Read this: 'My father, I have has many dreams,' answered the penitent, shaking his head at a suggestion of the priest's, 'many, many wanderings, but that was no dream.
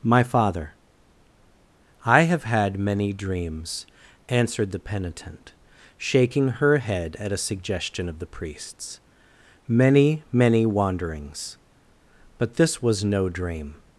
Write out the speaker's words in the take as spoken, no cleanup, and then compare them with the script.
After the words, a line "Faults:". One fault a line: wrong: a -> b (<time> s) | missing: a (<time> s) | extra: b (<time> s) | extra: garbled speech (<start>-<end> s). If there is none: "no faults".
'My father, I have had many dreams,' answered the penitent, shaking her head at a suggestion of the priest's, 'many, many wanderings, but this was no dream.
Faults:
wrong: has -> had (2.4 s)
wrong: his -> her (6.5 s)
wrong: that -> this (12.6 s)